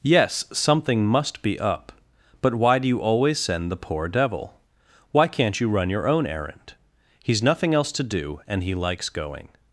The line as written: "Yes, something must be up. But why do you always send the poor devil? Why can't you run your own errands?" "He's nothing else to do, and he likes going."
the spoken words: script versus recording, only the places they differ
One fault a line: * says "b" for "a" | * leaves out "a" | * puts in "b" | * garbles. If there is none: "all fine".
* says "errand" for "errands"